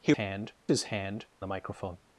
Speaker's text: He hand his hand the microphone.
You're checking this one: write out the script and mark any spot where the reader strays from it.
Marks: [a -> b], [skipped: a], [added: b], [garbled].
He hand his hand the microphone.